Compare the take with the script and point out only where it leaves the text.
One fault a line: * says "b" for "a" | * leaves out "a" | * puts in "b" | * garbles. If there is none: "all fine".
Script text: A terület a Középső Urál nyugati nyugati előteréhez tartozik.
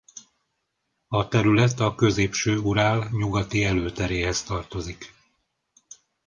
* leaves out "nyugati"